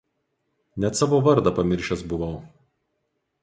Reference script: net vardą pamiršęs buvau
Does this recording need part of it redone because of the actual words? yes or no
yes